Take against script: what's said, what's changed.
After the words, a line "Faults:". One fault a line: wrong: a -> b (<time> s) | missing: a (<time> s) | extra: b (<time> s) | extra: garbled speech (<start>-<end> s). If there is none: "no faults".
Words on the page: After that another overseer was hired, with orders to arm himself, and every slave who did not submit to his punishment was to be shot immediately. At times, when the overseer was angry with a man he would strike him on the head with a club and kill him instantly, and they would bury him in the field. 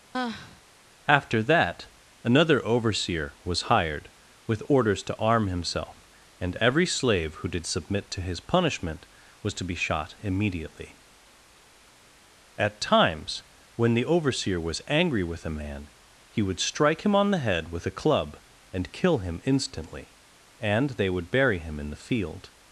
After that another overseer was hired, with orders to arm himself, and every slave who did submit to his punishment was to be shot immediately. At times, when the overseer was angry with a man he would strike him on the head with a club and kill him instantly, and they would bury him in the field.
Faults:
missing: not (7.7 s)